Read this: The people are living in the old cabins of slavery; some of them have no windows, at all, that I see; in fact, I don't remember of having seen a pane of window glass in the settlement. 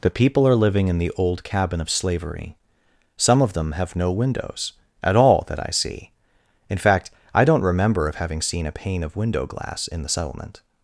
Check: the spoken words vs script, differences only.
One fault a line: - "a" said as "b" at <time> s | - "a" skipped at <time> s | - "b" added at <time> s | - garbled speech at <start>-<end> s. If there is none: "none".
- "cabins" said as "cabin" at 1.4 s